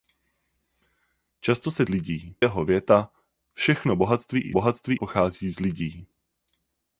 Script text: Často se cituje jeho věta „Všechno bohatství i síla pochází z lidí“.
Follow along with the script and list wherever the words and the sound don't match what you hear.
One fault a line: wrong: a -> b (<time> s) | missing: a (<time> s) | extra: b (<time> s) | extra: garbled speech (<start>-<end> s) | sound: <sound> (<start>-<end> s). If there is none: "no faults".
wrong: cituje -> lidí (1.9 s)
wrong: síla -> bohatství (4.5 s)